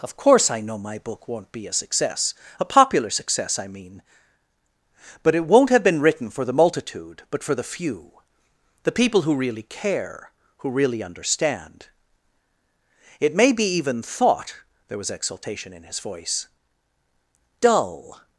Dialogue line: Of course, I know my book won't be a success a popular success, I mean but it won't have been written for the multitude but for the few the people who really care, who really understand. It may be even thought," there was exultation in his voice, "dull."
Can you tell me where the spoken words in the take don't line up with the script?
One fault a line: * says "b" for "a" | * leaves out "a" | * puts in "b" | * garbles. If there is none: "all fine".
all fine